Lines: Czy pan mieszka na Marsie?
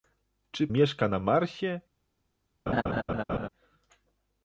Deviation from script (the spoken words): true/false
true